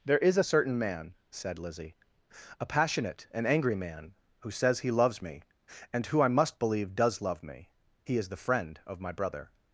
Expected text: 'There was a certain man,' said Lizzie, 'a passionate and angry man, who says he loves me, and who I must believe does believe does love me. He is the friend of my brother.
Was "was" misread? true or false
true